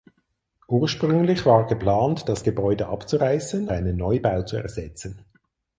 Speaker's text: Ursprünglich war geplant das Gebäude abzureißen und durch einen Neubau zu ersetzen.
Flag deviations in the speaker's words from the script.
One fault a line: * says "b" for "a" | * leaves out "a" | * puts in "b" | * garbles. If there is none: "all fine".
* leaves out "und durch"